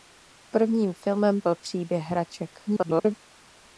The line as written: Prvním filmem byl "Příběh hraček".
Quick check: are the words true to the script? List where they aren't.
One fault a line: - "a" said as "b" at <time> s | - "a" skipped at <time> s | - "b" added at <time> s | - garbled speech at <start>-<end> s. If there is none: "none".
- garbled speech at 2.7-3.1 s